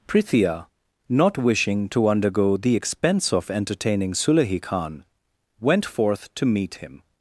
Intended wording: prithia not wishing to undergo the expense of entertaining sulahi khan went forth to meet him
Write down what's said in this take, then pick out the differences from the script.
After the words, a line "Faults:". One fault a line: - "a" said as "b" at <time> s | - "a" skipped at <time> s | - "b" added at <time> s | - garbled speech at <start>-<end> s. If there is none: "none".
prithia not wishing to undergo the expense of entertaining sulahi khan went forth to meet him
Faults:
none